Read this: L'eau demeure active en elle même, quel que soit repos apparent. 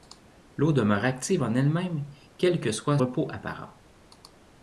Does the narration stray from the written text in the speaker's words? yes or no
no